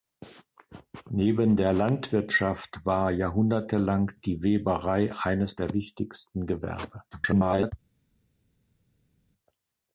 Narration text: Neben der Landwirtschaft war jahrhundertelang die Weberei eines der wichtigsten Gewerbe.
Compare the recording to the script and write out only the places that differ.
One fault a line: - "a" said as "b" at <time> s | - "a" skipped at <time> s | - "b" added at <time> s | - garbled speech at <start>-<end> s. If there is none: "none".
- garbled speech at 7.1-7.7 s